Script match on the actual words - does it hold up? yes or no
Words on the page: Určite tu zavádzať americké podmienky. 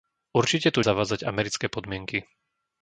yes